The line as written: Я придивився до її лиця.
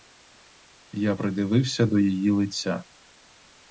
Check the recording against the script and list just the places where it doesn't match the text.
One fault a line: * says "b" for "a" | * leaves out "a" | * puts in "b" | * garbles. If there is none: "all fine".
all fine